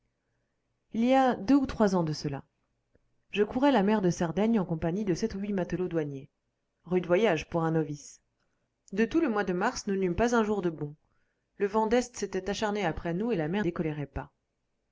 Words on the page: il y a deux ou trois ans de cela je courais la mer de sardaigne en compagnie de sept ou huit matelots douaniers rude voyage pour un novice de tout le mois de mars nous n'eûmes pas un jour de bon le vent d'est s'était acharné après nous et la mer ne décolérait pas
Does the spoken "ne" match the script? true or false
false